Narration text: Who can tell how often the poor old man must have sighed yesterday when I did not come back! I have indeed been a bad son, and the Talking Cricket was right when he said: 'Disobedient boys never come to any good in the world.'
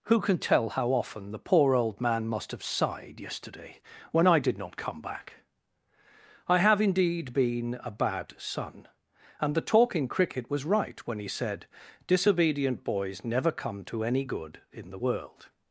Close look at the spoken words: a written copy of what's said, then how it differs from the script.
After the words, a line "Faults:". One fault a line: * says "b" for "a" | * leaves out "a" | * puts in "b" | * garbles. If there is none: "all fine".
Who can tell how often the poor old man must have sighed yesterday when I did not come back! I have indeed been a bad son, and the Talking Cricket was right when he said: 'Disobedient boys never come to any good in the world.'
Faults:
all fine